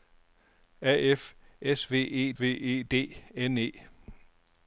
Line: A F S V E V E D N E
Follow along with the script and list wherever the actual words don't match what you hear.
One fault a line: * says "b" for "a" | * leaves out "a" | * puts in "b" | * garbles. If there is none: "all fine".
all fine